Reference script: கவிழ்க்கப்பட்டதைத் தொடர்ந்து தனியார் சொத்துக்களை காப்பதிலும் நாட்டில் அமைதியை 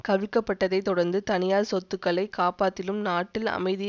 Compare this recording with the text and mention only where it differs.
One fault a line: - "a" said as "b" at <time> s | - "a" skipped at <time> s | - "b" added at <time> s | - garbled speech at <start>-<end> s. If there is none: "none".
none